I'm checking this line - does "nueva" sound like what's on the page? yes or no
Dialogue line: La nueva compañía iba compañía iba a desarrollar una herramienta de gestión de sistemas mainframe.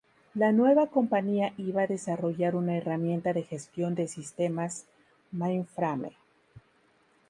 yes